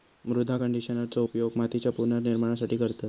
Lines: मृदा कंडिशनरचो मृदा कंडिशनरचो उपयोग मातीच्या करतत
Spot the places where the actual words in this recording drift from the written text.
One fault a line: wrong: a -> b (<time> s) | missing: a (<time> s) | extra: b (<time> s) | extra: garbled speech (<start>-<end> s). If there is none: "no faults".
missing: मृदा कंडिशनरचो (1.2 s)
extra: पुनर्निर्माणासाठी (1.9 s)